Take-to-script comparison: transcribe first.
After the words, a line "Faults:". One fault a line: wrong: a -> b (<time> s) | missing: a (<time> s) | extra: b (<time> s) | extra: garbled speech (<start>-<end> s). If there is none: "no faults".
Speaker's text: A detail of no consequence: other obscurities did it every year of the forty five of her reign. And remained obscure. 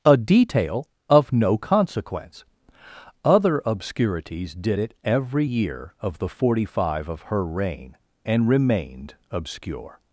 A detail of no consequence: other obscurities did it every year of the forty five of her reign. And remained obscure.
Faults:
no faults